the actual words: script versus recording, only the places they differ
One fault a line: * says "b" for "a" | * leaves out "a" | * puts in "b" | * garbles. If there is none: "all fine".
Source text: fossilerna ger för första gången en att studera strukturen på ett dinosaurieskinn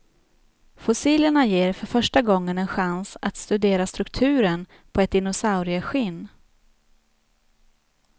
* puts in "chans"